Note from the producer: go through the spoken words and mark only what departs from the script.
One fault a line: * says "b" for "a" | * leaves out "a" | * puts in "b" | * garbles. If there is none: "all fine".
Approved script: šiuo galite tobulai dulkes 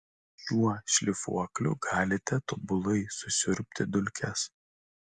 * puts in "šlifuokliu"
* puts in "susiurbti"